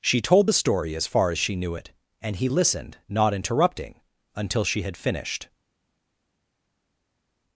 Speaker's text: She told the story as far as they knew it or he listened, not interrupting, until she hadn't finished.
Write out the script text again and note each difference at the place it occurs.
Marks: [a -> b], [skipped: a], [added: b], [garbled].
She told the story as far as [they -> she] knew it [or -> and] he listened, not interrupting, until she [hadn't -> had] finished.